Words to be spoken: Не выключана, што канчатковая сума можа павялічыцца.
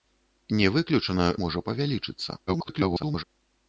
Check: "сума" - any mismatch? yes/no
yes